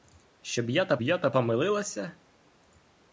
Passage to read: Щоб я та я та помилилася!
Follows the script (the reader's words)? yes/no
yes